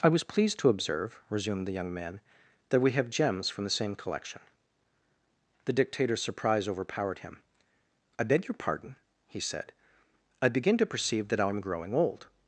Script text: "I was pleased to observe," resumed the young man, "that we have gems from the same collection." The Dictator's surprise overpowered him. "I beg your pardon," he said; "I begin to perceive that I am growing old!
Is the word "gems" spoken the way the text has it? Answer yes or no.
yes